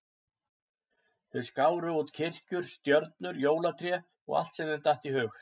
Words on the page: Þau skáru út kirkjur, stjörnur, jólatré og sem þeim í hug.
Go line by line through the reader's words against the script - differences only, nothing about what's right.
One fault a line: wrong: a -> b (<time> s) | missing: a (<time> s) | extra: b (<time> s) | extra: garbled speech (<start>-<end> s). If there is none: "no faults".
extra: allt (4.4 s)
extra: datt (4.9 s)